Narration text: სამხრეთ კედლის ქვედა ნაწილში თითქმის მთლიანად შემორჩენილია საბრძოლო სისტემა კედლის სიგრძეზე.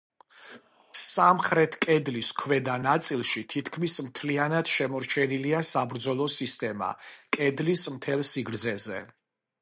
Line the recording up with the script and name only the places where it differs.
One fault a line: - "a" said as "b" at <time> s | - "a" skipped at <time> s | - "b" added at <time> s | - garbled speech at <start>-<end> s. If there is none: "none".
- "მთელ" added at 8.0 s